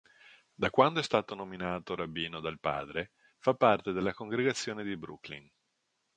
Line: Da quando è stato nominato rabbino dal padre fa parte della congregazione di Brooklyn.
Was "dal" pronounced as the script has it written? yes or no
yes